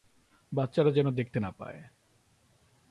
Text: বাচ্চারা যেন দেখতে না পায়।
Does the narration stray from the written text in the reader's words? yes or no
no